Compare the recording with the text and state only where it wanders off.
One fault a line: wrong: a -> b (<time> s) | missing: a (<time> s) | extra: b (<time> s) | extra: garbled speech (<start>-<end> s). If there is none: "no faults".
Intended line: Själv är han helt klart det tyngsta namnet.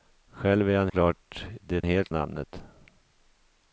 missing: helt (0.9 s)
wrong: tyngsta -> helt (1.8 s)